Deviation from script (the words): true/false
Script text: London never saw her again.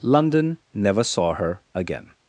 false